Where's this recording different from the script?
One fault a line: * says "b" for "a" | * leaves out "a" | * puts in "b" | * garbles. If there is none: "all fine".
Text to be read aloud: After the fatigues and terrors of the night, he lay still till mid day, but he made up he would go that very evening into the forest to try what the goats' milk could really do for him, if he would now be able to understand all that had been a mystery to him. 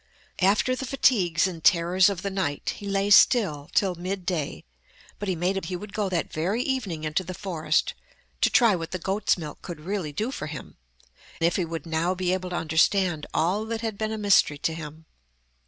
all fine